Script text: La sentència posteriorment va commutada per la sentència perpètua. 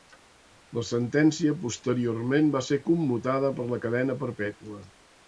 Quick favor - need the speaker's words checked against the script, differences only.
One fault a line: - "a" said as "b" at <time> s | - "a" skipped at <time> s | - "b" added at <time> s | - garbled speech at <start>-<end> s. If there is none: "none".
- "ser" added at 2.7 s
- "sentència" said as "cadena" at 3.9 s